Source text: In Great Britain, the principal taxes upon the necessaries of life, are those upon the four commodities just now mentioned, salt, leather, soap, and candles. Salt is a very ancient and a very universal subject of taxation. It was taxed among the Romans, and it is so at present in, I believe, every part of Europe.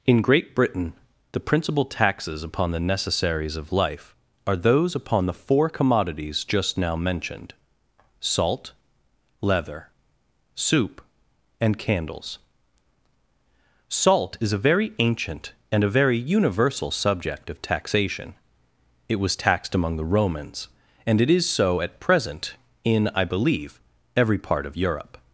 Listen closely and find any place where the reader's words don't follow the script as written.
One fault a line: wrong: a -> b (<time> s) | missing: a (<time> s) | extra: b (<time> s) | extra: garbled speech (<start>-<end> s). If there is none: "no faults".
wrong: soap -> soup (10.5 s)